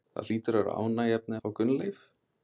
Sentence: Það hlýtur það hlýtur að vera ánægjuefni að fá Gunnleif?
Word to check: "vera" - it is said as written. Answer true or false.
true